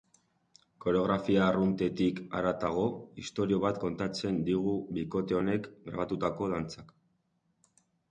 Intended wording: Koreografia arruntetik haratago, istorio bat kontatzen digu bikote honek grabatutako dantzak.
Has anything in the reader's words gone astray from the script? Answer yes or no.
no